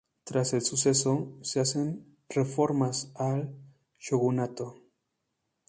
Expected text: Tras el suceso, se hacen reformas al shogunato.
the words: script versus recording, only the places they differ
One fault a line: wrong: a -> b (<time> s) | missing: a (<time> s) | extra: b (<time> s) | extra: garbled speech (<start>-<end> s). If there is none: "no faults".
no faults